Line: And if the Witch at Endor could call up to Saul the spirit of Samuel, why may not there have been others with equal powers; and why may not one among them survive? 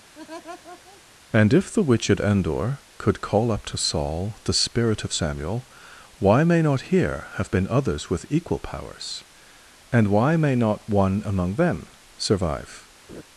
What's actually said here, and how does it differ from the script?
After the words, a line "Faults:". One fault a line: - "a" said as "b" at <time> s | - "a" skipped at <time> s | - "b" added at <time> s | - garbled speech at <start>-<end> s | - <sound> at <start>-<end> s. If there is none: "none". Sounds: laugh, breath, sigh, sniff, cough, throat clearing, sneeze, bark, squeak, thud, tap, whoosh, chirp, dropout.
And if the Witch at Endor could call up to Saul the spirit of Samuel, why may not here have been others with equal powers; and why may not one among them survive?
Faults:
- laugh at 0.1-1.0 s
- "there" said as "here" at 6.9 s
- laugh at 13.1-13.2 s